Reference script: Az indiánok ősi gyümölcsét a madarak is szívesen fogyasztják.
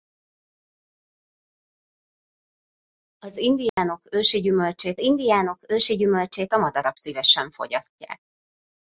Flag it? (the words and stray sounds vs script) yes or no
yes